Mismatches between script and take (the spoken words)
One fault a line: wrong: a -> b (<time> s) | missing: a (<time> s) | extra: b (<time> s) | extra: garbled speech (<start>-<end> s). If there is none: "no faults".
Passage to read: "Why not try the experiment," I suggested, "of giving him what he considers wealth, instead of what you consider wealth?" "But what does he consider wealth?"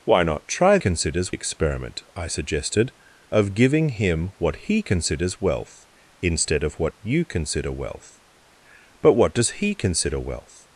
wrong: the -> considers (0.8 s)